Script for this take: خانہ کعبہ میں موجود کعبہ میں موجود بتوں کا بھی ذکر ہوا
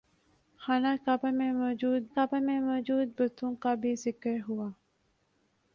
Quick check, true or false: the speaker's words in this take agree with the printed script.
true